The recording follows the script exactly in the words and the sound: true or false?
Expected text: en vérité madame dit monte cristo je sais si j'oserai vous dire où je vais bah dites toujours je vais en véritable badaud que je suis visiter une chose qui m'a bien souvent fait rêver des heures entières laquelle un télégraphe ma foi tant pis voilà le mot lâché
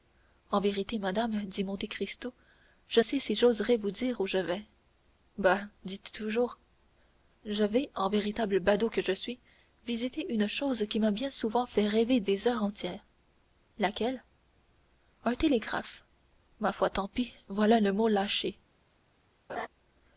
false